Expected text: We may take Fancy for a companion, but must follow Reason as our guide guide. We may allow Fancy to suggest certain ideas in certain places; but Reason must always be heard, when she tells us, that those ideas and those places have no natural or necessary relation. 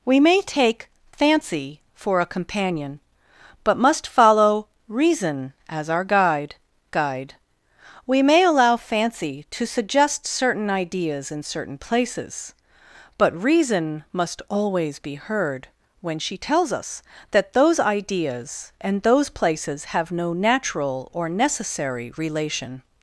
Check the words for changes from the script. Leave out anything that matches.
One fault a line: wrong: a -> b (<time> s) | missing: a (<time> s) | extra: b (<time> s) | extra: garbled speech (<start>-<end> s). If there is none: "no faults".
no faults